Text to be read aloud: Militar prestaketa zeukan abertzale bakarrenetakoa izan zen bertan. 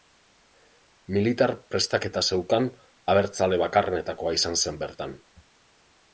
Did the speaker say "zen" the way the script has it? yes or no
yes